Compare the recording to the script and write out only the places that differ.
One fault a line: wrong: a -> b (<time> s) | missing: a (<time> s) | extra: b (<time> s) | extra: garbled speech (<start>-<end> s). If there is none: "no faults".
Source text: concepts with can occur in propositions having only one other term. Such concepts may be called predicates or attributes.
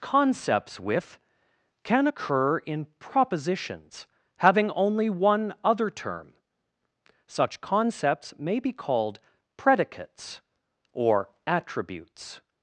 no faults